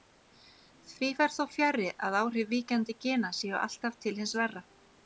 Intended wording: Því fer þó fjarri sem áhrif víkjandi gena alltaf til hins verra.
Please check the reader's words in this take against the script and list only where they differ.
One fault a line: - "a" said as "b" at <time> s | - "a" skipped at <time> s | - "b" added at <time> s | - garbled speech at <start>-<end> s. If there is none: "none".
- "sem" said as "að" at 2.1 s
- "séu" added at 3.4 s